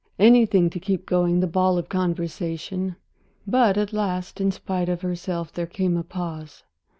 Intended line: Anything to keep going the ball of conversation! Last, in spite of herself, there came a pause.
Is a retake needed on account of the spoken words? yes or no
yes